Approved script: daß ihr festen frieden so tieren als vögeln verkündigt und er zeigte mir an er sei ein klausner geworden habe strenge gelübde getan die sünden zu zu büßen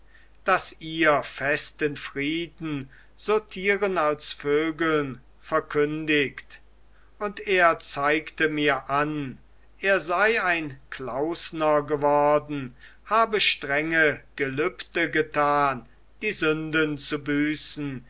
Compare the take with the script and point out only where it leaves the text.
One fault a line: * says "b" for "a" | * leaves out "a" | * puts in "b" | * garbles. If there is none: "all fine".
* leaves out "zu"